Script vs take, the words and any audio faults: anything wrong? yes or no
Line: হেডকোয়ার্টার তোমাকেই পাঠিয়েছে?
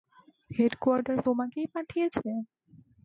no